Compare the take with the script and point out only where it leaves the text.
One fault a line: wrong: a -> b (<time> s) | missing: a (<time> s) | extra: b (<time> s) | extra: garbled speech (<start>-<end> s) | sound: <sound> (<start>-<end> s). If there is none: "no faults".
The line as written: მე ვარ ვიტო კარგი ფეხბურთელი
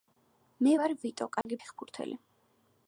sound: dropout (1.4-1.4 s)